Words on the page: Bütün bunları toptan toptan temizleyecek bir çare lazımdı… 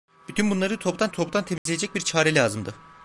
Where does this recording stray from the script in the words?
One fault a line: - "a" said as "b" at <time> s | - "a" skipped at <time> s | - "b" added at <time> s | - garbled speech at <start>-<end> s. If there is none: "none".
none